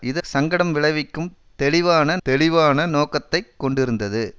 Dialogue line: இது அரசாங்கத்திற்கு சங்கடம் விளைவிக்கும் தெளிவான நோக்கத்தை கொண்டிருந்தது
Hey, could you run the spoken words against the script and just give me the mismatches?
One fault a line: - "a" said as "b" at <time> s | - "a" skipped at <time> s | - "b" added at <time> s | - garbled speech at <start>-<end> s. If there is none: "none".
- "அரசாங்கத்திற்கு" skipped at 0.2 s
- "தெளிவான" added at 2.2 s